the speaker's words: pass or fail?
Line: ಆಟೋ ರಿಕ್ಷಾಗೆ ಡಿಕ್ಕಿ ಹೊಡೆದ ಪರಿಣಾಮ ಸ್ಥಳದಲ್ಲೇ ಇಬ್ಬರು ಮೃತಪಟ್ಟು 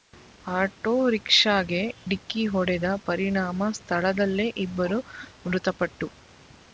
pass